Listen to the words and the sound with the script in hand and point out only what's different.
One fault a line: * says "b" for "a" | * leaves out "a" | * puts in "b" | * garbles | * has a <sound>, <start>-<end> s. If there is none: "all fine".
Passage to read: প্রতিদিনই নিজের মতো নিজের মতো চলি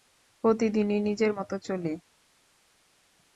* leaves out "নিজের মতো"